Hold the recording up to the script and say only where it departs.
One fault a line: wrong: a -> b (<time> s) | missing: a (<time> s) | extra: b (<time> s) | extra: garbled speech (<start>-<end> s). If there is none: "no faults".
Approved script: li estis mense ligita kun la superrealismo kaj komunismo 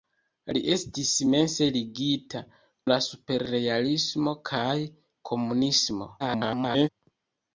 missing: kun (2.4 s)
extra: garbled speech (6.2-6.9 s)